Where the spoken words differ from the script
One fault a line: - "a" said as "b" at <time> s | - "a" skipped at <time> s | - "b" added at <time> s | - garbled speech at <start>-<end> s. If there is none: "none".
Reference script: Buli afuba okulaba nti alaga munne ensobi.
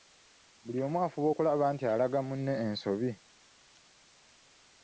- "omu" added at 0.8 s